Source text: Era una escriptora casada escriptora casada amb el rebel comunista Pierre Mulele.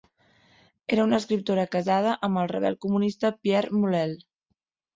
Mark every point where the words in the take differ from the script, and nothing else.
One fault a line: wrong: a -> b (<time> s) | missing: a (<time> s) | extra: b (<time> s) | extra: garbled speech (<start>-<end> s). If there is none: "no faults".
missing: escriptora casada (2.1 s)